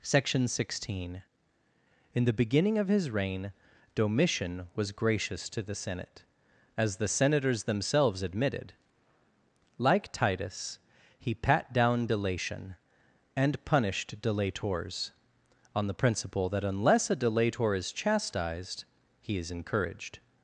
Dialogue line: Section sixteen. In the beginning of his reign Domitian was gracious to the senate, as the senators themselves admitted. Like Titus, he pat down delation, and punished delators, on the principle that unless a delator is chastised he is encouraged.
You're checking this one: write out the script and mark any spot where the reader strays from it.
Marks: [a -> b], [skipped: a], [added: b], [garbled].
Section sixteen. In the beginning of his reign Domitian was gracious to the senate, as the senators themselves admitted. Like Titus, he pat down delation, and punished delators, on the principle that unless a delator is chastised he is encouraged.